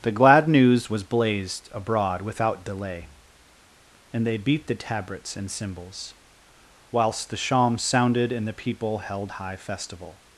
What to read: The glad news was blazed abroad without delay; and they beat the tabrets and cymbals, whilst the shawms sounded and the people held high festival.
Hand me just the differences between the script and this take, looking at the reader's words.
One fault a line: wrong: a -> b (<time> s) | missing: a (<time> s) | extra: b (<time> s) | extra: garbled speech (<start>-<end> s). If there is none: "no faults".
no faults